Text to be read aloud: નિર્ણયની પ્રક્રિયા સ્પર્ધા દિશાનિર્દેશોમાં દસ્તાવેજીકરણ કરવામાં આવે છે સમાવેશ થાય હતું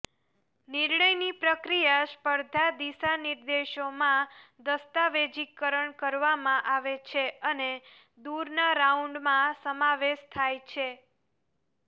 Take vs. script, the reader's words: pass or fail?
fail